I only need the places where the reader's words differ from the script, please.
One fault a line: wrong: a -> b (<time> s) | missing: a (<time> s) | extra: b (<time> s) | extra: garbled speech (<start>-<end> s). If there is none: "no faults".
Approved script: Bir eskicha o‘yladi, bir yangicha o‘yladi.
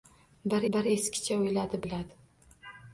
extra: bir (0.8 s)
missing: bir yangicha (1.8 s)